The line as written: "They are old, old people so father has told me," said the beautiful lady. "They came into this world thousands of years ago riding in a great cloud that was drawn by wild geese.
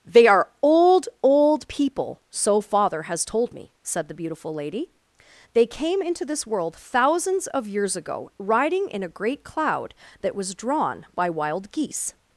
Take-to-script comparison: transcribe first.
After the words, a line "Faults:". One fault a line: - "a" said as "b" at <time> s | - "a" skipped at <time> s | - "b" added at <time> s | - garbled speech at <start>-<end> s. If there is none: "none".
"They are old, old people so father has told me," said the beautiful lady. "They came into this world thousands of years ago riding in a great cloud that was drawn by wild geese.
Faults:
none